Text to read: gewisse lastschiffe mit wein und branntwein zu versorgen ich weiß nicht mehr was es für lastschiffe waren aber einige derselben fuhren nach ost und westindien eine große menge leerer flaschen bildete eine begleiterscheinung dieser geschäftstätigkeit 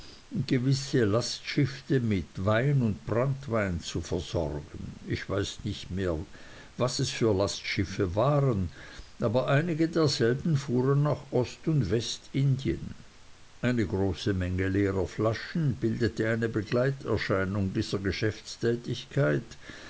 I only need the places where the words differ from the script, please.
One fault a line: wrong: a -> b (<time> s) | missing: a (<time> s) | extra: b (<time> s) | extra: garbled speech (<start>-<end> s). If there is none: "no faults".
no faults